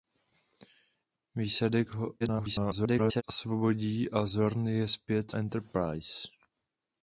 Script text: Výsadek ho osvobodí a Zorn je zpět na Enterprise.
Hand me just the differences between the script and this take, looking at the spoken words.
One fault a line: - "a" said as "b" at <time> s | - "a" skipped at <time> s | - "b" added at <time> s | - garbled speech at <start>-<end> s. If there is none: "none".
- garbled speech at 2.2-3.2 s
- "na" skipped at 5.3 s